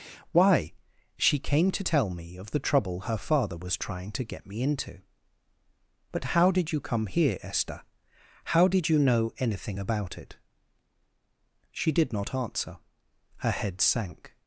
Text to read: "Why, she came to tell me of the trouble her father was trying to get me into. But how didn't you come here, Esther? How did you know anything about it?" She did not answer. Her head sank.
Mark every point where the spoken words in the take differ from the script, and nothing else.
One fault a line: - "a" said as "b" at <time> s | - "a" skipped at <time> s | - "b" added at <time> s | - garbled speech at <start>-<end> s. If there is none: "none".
- "didn't" said as "did" at 6.5 s